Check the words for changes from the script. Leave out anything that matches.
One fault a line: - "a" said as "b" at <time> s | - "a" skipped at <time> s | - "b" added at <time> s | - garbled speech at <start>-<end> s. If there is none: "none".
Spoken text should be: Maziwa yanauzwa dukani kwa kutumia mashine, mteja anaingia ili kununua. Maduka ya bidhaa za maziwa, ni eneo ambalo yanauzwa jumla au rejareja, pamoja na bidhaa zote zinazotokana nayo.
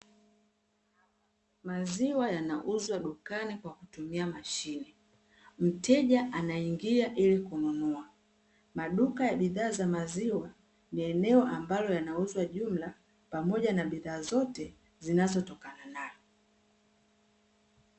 - "au rejareja" skipped at 12.9 s